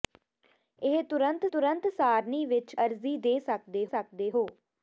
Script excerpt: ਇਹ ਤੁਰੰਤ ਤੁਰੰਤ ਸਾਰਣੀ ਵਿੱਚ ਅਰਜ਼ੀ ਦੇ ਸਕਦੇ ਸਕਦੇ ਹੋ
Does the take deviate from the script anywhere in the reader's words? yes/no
no